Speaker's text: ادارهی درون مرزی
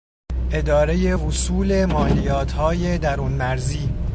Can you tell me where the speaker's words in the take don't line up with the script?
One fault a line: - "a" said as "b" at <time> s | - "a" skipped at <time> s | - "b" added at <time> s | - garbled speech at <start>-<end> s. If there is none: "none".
- "وصول مالیاتهای" added at 1.1 s